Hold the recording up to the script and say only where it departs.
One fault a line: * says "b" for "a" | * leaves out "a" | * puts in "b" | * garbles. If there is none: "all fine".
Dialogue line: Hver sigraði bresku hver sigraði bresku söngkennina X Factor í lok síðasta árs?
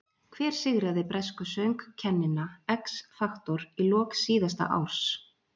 * leaves out "hver sigraði bresku"